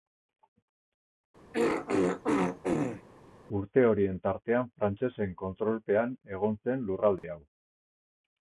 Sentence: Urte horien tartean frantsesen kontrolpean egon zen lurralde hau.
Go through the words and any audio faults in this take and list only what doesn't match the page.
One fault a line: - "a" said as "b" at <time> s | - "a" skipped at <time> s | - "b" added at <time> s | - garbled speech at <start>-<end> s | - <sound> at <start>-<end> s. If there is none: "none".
- throat clearing at 1.5-3.0 s
- dropout at 7.2-7.2 s